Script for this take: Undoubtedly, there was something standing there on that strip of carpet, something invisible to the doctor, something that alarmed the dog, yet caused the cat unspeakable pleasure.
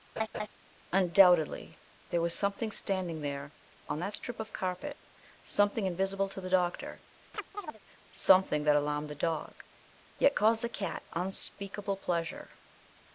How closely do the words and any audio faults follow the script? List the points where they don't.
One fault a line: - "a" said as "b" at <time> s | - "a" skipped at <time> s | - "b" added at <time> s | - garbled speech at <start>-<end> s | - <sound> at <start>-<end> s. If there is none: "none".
- laugh at 0.2-0.5 s
- chirp at 7.3-7.8 s